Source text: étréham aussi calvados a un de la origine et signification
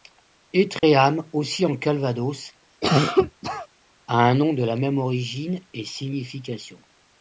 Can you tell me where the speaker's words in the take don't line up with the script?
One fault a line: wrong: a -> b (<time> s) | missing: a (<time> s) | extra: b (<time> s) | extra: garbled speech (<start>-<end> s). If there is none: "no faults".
extra: en (1.6 s)
extra: nom (4.4 s)
extra: même (4.8 s)